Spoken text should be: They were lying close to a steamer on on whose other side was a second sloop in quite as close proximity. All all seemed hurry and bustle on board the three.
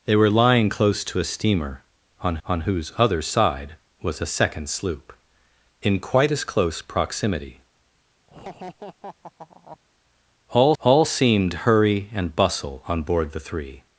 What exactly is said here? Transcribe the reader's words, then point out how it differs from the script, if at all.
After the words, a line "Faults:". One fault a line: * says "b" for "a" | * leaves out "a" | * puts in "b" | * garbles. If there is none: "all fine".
They were lying close to a steamer on on whose other side was a second sloop in quite as close proximity. All all seemed hurry and bustle on board the three.
Faults:
all fine